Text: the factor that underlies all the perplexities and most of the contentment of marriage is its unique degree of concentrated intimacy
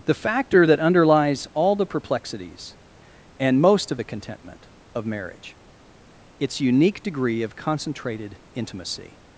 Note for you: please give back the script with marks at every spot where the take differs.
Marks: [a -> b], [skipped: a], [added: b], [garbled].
the factor that underlies all the perplexities and most of the contentment of marriage [skipped: is] its unique degree of concentrated intimacy